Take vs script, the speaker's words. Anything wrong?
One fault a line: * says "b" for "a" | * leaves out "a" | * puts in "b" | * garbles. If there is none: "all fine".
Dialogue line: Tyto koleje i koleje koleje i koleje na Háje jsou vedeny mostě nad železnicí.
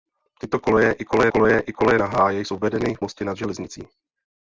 all fine